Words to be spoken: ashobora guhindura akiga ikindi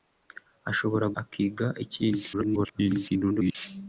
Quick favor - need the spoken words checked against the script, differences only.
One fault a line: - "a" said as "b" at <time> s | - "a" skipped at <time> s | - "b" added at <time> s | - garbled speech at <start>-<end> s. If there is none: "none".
- "guhindura" skipped at 1.1 s
- garbled speech at 2.3-3.6 s